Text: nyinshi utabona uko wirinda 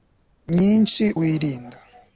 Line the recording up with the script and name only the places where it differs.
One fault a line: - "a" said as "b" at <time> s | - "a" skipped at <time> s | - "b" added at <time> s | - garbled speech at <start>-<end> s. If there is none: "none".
- "utabona uko" skipped at 1.1 s